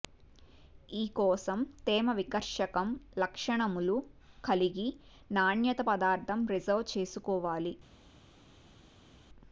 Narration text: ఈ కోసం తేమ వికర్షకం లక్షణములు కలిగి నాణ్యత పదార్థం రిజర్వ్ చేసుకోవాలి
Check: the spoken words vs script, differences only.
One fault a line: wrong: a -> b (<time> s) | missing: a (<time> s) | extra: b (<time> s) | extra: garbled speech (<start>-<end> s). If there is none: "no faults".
no faults